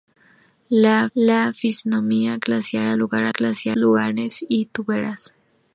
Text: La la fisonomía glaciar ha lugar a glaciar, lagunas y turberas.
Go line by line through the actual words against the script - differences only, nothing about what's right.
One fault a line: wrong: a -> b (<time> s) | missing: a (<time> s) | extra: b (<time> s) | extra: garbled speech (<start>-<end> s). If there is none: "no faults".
no faults